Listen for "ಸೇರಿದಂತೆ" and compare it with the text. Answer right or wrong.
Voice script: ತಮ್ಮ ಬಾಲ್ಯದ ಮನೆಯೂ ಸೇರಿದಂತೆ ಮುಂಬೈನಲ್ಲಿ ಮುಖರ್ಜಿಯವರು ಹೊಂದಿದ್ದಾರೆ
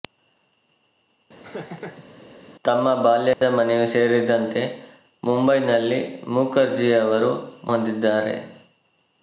right